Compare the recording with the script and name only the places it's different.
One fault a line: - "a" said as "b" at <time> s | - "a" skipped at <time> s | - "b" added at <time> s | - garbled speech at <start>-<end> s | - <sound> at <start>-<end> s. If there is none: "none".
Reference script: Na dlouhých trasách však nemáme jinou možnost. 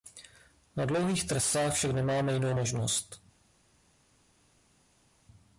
none